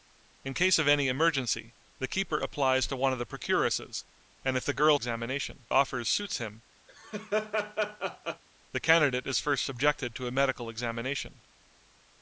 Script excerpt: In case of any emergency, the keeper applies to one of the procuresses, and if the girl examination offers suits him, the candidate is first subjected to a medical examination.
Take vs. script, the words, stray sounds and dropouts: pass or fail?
fail